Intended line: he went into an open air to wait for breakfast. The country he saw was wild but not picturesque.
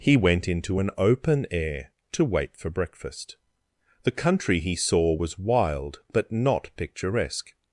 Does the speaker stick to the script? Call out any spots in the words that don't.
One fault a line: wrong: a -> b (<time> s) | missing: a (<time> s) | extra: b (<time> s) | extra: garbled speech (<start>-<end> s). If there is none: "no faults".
no faults